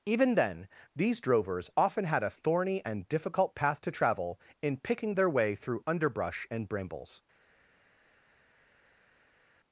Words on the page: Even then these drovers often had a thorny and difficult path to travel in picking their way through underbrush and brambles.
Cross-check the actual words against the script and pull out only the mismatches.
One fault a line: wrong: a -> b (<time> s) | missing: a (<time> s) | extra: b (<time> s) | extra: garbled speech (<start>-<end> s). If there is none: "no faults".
no faults